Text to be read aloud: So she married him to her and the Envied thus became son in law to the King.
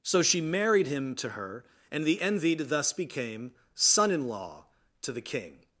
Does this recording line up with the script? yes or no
yes